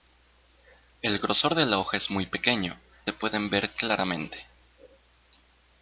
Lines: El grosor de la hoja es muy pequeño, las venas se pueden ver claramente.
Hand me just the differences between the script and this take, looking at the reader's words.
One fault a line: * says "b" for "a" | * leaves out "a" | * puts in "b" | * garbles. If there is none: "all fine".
* leaves out "las venas"